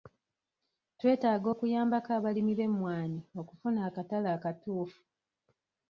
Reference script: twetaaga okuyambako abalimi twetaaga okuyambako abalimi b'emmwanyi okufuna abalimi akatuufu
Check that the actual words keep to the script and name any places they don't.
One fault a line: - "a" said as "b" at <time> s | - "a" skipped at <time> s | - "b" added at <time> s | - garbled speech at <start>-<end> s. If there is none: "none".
- "twetaaga okuyambako abalimi" skipped at 2.5 s
- "abalimi" said as "akatale" at 3.9 s